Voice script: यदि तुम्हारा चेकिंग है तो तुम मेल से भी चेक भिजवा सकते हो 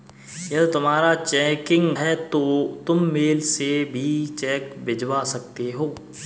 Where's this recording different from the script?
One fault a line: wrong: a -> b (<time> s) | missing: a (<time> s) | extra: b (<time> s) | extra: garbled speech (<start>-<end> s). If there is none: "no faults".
no faults